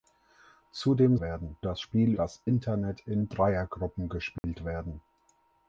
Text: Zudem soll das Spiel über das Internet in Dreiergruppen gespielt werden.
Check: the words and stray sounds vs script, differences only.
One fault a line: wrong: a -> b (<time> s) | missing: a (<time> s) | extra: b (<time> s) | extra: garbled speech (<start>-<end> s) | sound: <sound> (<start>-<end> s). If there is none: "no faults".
wrong: soll -> werden (1.2 s)
missing: über (2.1 s)
sound: dropout (4.4-4.4 s)